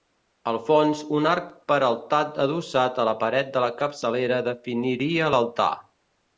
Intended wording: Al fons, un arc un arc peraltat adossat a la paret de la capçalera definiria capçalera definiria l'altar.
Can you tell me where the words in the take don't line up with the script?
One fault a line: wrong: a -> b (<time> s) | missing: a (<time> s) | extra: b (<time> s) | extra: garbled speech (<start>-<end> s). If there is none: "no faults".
missing: un arc (1.5 s)
missing: capçalera definiria (5.3 s)